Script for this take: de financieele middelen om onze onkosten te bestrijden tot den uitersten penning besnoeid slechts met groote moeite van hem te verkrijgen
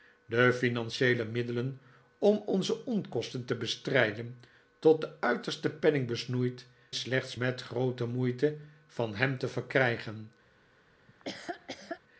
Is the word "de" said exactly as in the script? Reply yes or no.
yes